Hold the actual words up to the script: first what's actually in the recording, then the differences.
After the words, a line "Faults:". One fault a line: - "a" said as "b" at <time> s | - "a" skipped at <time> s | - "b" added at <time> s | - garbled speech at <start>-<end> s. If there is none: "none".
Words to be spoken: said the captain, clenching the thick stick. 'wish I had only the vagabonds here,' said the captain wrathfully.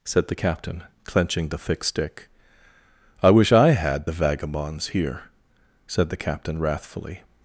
said the captain, clenching the thick stick. 'I wish I had the vagabonds here,' said the captain wrathfully.
Faults:
- "I" added at 3.2 s
- "only" skipped at 4.1 s